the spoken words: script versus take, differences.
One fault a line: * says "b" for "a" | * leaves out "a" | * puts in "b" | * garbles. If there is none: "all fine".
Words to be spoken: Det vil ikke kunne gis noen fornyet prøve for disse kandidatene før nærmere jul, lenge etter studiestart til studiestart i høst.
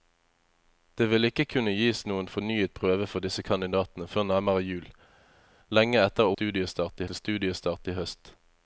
all fine